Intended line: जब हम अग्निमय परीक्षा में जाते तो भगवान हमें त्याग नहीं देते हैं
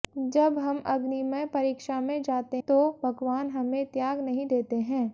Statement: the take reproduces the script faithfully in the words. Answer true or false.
true